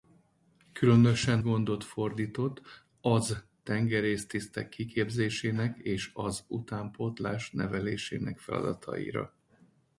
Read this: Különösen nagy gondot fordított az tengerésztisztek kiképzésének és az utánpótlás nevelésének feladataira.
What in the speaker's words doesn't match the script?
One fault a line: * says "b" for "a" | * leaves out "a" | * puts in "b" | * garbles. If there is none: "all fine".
* leaves out "nagy"